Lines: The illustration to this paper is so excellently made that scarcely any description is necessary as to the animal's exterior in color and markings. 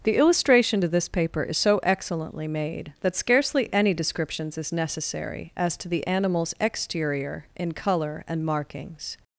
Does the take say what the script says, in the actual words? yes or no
no